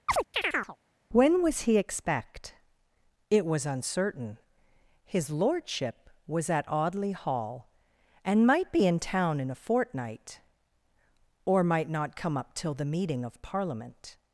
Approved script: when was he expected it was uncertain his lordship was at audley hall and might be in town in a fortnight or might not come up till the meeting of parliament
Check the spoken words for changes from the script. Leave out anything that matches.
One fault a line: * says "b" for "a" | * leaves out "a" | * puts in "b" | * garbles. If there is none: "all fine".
* says "expect" for "expected"